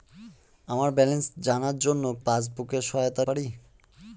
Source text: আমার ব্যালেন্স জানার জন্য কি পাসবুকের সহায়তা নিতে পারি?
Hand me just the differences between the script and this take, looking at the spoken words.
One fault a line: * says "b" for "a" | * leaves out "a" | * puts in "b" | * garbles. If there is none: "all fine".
* leaves out "কি"
* leaves out "নিতে"